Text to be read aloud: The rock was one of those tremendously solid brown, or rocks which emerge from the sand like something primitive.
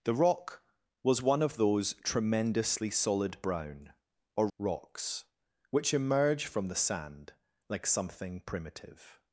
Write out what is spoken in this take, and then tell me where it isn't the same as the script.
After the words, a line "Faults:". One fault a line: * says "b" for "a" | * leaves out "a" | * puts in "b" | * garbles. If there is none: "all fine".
The rock was one of those tremendously solid brown, or rocks which emerge from the sand like something primitive.
Faults:
all fine